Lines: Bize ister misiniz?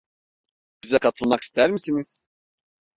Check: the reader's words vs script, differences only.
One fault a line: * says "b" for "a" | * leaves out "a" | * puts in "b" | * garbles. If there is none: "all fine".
* puts in "katılmak"